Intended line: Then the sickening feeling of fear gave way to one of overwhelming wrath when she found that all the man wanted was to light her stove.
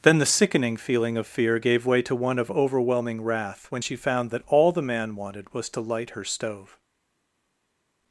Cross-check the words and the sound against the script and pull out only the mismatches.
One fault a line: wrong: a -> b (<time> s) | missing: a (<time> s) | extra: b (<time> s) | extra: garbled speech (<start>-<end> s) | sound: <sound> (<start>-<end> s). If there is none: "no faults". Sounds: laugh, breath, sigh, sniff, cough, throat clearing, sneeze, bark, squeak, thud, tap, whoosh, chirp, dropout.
no faults